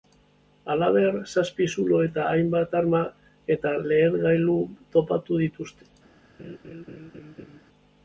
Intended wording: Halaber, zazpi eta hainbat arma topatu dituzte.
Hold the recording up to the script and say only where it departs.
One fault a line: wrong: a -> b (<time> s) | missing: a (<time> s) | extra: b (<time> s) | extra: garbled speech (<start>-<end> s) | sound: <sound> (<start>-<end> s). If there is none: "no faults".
extra: zulo (1.8 s)
extra: eta lehergailu (3.6 s)
sound: laugh (6.4-7.6 s)